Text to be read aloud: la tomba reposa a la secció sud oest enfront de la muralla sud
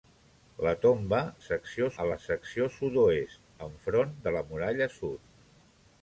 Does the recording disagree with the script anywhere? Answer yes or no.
yes